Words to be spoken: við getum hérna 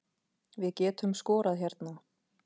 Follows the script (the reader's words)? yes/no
no